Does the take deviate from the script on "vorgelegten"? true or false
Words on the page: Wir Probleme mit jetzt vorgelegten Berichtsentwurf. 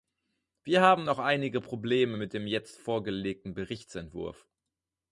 false